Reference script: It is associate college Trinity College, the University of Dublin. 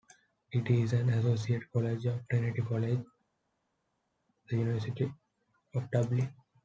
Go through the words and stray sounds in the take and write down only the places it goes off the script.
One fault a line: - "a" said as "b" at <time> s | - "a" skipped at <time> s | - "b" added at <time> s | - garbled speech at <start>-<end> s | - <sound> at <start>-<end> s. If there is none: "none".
- "an" added at 0.9 s
- "of" added at 2.0 s